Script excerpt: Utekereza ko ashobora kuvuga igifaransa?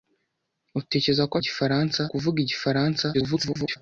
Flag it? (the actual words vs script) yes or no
yes